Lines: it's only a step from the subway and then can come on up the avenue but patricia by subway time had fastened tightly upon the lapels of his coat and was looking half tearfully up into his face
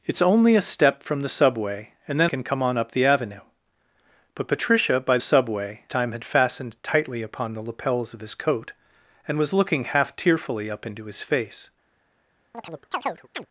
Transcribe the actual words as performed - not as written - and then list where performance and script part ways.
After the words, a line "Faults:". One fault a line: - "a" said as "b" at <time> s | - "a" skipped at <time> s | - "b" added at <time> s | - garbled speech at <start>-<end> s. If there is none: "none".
it's only a step from the subway and then can come on up the avenue but patricia by subway time had fastened tightly upon the lapels of his coat and was looking half tearfully up into his face
Faults:
none